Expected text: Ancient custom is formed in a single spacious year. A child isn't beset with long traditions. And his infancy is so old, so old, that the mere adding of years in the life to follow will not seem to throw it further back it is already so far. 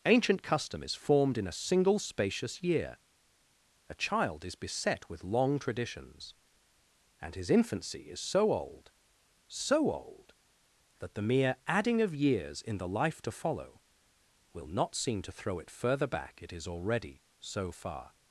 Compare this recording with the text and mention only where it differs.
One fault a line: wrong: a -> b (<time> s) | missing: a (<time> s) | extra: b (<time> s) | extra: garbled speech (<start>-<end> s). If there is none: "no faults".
wrong: isn't -> is (4.4 s)